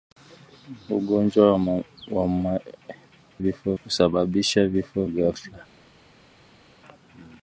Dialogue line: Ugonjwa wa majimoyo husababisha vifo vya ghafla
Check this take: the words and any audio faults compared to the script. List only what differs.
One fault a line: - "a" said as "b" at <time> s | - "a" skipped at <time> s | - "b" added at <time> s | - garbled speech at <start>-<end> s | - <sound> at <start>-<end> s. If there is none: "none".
- "majimoyo" said as "vifo" at 3.4 s
- "vya" skipped at 5.0 s